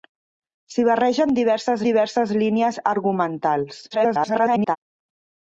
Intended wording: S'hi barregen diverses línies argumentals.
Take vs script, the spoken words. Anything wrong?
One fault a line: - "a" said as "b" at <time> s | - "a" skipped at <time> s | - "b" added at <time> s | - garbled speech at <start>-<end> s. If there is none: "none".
- "diverses" added at 1.9 s
- garbled speech at 3.9-4.8 s